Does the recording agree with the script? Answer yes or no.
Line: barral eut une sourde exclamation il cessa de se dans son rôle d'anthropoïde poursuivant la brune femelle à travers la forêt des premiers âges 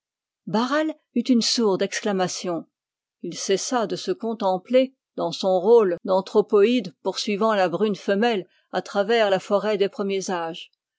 no